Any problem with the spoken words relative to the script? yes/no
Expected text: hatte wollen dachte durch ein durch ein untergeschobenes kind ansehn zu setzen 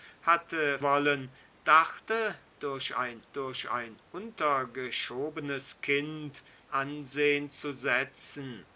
no